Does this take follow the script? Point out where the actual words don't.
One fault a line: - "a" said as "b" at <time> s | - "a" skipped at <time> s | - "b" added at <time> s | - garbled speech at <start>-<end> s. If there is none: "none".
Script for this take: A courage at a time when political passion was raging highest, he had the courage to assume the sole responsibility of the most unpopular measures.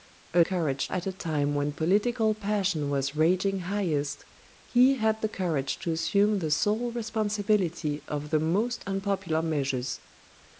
none